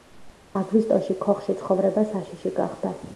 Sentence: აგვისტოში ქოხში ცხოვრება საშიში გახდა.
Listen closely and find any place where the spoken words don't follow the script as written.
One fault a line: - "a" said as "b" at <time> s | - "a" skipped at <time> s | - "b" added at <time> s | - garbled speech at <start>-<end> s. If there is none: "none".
none